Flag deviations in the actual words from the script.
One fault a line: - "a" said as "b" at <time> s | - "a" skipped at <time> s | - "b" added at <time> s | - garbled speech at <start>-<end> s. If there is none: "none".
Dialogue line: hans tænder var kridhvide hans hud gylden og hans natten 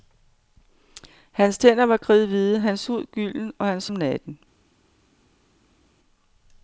none